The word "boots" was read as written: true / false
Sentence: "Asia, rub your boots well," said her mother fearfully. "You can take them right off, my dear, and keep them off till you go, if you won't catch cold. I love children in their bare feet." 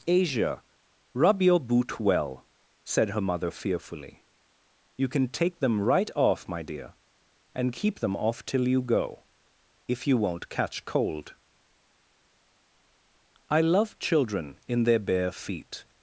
false